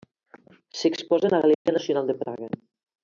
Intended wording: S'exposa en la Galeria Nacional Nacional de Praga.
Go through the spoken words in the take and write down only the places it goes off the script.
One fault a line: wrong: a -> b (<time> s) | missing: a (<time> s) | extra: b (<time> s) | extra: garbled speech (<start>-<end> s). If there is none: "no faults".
missing: Nacional (2.1 s)